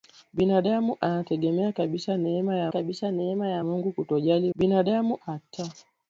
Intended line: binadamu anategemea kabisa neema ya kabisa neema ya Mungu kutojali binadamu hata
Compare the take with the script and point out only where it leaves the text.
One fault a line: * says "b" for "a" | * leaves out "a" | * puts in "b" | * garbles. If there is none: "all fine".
all fine